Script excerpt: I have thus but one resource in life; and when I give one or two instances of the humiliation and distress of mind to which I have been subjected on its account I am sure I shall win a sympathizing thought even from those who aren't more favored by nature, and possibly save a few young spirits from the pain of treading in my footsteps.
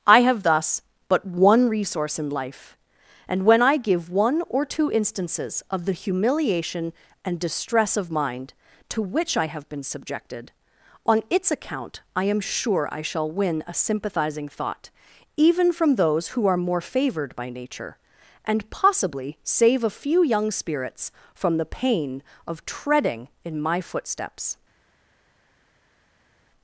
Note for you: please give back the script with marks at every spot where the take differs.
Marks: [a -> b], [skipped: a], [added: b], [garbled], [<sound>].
I have thus but one resource in life; and when I give one or two instances of the humiliation and distress of mind to which I have been subjected on its account I am sure I shall win a sympathizing thought even from those who [aren't -> are] more favored by nature, and possibly save a few young spirits from the pain of treading in my footsteps.